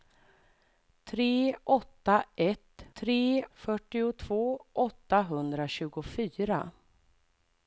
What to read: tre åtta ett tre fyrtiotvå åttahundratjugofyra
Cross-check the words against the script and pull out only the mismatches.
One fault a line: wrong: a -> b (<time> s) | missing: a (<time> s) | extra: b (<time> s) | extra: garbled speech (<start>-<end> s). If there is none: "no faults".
no faults